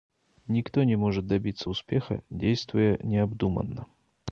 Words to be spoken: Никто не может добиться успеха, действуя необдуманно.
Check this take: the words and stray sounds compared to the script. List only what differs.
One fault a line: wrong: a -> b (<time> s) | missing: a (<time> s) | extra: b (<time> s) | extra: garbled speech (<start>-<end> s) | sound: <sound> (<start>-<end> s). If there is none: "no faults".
no faults